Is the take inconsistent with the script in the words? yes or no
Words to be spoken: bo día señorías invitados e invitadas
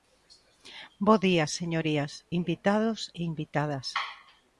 no